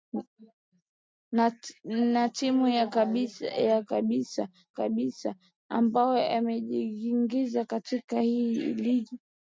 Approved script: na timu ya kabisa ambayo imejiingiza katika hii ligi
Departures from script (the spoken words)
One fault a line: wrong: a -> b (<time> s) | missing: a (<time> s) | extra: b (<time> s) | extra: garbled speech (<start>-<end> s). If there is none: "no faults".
extra: kabisa (4.7 s)